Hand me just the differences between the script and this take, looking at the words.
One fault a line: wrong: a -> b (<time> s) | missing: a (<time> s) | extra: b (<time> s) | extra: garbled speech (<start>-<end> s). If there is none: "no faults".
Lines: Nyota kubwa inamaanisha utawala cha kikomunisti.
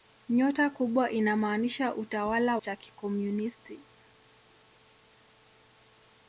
no faults